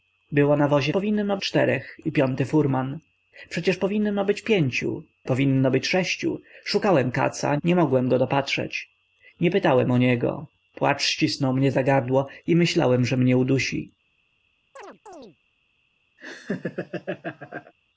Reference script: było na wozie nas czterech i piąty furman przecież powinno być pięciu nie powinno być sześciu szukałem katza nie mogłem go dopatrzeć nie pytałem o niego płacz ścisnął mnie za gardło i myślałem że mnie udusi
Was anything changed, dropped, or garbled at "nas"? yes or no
yes